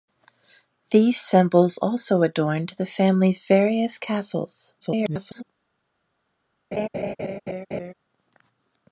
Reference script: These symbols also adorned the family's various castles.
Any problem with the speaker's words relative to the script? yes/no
yes